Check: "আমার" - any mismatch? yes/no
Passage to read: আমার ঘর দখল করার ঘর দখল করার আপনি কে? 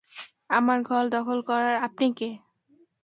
no